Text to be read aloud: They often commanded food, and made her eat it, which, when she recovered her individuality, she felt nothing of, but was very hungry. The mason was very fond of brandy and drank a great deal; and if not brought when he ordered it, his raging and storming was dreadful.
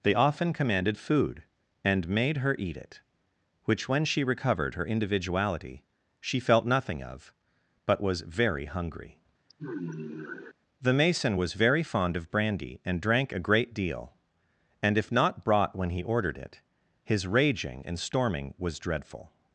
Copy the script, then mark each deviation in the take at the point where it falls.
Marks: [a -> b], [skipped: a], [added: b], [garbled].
They often commanded food, and made her eat it, which, when she recovered her individuality, she felt nothing of, but was very hungry. The mason was very fond of brandy and drank a great deal; and if not brought when he ordered it, his raging and storming was dreadful.